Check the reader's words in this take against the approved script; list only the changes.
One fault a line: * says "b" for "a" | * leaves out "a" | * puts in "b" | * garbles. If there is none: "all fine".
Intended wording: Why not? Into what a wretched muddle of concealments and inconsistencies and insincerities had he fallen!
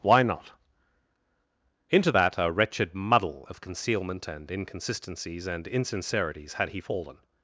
* says "that" for "what"
* says "concealment" for "concealments"